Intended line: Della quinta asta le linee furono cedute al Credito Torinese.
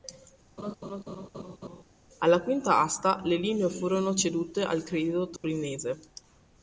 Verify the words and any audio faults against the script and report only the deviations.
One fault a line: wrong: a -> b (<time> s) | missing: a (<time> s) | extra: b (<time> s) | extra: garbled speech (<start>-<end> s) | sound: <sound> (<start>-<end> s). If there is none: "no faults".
sound: laugh (0.6-1.8 s)
wrong: Della -> Alla (2.2 s)
sound: dropout (5.4-5.4 s)